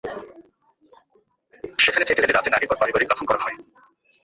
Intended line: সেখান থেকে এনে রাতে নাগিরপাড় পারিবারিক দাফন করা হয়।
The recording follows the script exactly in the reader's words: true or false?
true